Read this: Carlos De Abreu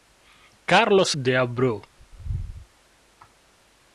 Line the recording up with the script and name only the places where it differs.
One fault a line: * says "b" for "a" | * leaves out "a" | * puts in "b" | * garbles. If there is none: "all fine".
all fine